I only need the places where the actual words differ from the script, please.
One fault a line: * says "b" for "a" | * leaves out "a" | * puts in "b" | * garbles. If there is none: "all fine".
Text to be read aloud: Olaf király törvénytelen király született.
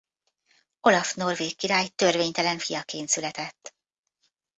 * puts in "norvég"
* says "fiaként" for "király"